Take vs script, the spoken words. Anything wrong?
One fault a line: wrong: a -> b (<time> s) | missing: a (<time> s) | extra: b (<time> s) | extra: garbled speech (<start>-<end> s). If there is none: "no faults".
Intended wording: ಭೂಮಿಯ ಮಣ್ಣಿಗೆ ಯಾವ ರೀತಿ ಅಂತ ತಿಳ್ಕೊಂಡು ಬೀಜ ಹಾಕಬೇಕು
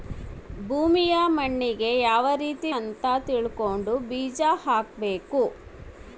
no faults